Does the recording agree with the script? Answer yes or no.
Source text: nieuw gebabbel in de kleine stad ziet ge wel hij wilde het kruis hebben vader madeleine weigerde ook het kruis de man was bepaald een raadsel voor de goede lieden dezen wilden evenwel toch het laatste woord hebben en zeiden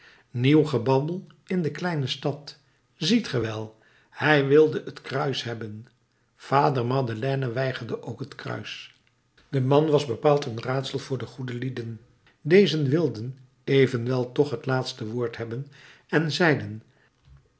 yes